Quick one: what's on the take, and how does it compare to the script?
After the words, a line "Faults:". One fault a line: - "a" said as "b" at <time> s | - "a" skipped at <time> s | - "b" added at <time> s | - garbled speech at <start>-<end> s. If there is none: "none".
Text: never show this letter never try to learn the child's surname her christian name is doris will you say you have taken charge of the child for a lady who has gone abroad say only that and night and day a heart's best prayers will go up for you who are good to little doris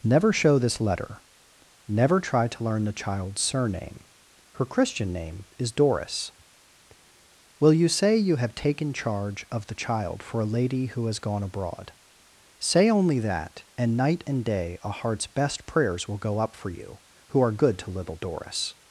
never show this letter never try to learn the child's surname her christian name is doris will you say you have taken charge of the child for a lady who has gone abroad say only that and night and day a heart's best prayers will go up for you who are good to little doris
Faults:
none